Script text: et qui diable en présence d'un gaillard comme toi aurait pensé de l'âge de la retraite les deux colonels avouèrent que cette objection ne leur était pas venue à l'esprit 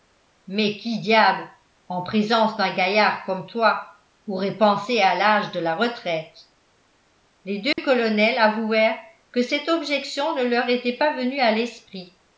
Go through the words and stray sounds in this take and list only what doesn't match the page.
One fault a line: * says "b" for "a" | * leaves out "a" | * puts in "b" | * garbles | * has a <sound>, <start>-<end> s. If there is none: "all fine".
* says "mais" for "et"
* says "à" for "de"
* has a dropout, 7.7-7.8 s